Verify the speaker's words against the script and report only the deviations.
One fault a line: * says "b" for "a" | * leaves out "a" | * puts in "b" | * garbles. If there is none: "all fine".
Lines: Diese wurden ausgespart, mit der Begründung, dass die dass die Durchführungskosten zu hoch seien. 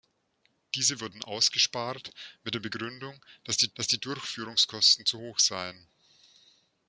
all fine